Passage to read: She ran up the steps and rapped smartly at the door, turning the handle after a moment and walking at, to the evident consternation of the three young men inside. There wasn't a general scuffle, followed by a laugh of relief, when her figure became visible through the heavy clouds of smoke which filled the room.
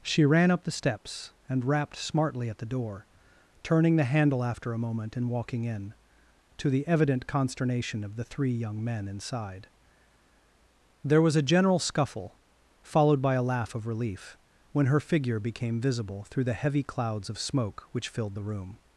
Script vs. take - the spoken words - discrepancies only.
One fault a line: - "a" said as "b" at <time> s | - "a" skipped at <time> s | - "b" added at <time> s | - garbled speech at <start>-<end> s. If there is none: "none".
- "at" said as "in" at 5.6 s
- "wasn't" said as "was" at 11.2 s